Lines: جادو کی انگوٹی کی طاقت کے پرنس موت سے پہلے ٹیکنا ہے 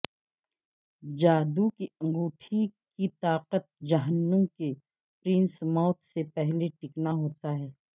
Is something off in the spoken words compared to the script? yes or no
yes